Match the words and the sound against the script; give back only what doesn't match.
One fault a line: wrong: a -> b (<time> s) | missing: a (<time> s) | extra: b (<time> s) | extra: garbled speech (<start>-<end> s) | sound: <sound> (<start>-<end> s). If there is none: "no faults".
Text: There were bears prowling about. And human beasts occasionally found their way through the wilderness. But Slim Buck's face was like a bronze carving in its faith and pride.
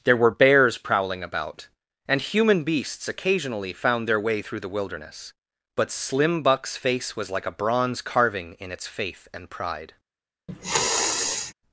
sound: sniff (10.5-11.5 s)